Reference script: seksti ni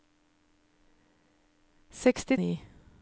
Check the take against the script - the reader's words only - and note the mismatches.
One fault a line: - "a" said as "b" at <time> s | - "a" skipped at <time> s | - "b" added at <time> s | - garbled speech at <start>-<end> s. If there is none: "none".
none